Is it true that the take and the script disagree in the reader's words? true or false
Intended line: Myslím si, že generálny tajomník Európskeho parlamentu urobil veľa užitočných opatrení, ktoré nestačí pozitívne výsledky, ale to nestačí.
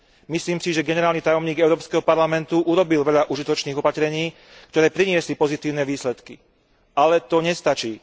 true